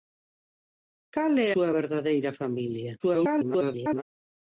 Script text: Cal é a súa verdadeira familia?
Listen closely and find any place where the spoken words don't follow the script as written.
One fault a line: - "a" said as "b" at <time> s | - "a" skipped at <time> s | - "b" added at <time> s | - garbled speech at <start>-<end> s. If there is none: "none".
- "a" skipped at 1.5 s
- garbled speech at 3.0-4.0 s